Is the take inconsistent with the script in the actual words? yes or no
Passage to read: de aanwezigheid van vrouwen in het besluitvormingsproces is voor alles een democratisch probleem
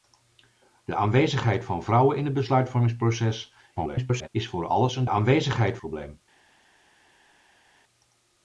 yes